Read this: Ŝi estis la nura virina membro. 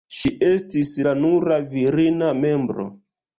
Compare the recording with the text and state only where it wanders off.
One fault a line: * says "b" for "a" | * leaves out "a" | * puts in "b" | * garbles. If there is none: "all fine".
all fine